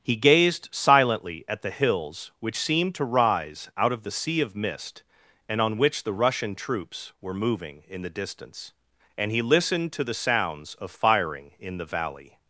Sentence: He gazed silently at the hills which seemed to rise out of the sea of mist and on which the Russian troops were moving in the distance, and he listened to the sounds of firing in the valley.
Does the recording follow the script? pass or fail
pass